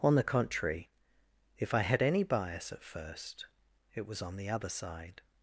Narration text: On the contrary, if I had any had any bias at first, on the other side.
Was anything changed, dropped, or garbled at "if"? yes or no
no